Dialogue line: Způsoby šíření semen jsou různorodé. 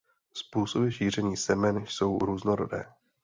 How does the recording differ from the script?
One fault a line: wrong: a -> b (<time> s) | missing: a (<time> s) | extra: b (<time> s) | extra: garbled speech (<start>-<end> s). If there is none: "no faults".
no faults